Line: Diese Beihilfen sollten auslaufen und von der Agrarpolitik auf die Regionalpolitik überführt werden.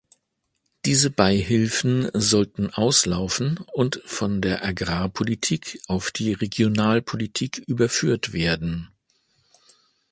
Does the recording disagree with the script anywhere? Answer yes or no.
no